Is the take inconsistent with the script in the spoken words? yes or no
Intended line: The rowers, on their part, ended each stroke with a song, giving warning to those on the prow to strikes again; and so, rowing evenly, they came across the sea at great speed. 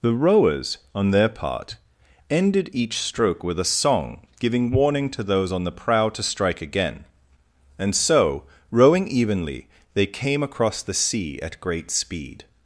yes